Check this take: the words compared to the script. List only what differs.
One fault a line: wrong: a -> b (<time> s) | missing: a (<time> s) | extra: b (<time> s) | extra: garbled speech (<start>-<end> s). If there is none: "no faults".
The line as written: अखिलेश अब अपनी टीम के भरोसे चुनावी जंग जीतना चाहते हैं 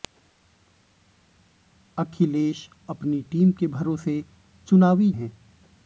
missing: अब (2.7 s)
missing: जंग जीतना चाहते (5.1 s)